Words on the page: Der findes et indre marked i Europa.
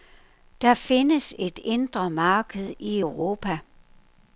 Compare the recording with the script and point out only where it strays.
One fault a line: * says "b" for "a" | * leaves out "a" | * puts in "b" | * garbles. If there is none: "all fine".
all fine